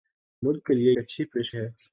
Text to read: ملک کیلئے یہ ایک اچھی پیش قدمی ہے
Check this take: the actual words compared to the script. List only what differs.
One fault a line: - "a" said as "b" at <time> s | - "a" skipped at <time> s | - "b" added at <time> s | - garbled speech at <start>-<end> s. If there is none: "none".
- "یہ ایک" skipped at 0.9 s
- "قدمی" skipped at 1.5 s